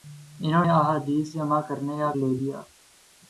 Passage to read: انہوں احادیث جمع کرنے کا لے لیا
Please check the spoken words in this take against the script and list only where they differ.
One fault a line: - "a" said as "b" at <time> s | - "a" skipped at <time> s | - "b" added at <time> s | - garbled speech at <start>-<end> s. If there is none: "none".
none